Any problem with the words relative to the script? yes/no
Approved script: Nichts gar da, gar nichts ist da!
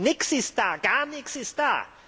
yes